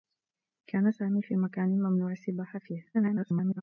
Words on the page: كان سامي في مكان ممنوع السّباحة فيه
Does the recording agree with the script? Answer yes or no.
no